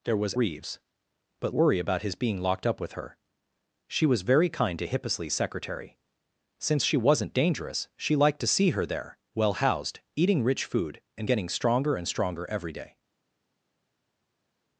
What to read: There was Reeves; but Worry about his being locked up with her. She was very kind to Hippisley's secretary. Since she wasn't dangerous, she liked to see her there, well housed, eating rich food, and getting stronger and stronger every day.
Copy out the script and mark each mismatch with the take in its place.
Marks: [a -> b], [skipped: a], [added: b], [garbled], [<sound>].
There was Reeves; but Worry about his being locked up with her. She was very kind to Hippisley's secretary. Since she wasn't dangerous, she liked to see her there, well housed, eating rich food, and getting stronger and stronger every day.